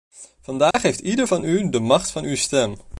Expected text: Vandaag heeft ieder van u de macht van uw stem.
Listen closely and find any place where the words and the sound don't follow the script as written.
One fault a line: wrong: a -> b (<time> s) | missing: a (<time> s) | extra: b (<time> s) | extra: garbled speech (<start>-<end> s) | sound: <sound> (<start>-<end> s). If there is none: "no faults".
sound: dropout (0.7-0.7 s)